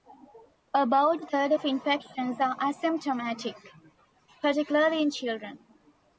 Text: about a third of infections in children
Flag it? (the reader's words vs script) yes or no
yes